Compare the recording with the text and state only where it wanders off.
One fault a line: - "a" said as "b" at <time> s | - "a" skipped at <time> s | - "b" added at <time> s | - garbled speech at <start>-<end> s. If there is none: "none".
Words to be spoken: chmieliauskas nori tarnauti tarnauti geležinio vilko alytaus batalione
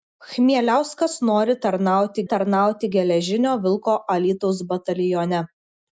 none